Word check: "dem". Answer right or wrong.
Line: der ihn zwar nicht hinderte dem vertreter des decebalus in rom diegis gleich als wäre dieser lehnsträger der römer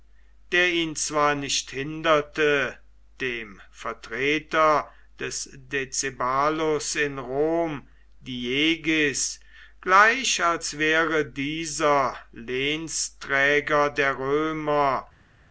right